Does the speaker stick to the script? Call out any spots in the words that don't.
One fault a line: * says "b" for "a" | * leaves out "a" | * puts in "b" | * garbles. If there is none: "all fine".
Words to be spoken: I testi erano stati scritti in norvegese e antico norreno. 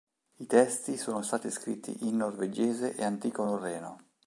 * says "sono" for "erano"